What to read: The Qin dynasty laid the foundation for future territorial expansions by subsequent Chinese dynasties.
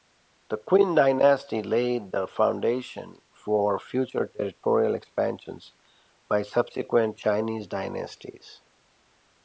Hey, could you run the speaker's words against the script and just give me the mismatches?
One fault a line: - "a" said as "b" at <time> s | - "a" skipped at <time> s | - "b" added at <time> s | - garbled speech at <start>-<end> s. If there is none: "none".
none